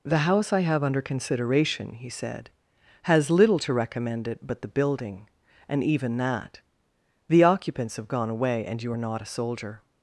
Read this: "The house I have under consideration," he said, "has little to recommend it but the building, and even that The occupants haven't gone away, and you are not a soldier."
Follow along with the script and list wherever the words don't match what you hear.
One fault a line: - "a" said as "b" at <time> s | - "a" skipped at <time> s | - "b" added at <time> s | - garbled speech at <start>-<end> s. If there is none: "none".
- "haven't" said as "have" at 8.0 s